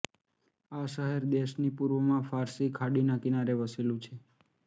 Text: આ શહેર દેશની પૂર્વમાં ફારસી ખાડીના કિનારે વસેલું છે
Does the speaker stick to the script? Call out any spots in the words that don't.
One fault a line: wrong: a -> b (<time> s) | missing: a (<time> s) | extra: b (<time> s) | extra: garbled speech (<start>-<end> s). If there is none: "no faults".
no faults